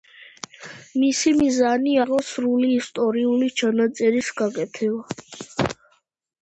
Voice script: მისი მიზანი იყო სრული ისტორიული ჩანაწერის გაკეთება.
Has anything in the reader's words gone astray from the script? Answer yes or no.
no